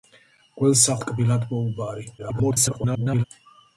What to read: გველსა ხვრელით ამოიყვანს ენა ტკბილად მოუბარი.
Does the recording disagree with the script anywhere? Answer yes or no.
yes